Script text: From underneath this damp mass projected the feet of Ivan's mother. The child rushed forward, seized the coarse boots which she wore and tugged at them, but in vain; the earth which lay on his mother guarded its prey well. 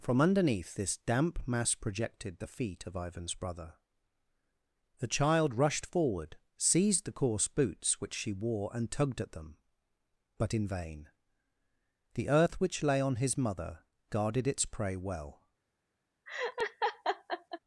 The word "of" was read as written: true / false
true